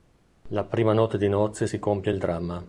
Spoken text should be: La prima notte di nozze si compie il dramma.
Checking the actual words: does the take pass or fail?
pass